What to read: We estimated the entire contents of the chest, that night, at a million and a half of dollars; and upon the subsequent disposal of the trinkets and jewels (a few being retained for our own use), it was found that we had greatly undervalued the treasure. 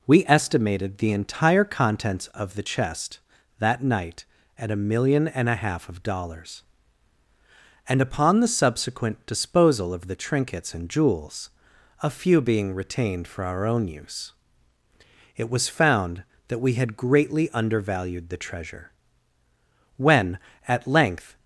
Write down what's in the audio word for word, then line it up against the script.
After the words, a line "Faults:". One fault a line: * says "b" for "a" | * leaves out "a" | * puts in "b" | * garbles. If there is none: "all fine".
We estimated the entire contents of the chest, that night, at a million and a half of dollars; and upon the subsequent disposal of the trinkets and jewels (a few being retained for our own use), it was found that we had greatly undervalued the treasure. When, at length
Faults:
* puts in "When at length"